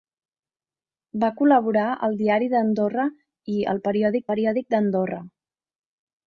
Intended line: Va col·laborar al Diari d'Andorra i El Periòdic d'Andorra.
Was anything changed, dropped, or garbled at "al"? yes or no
no